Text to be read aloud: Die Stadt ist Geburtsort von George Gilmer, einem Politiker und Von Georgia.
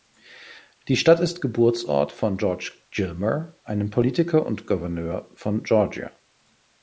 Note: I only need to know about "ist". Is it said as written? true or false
true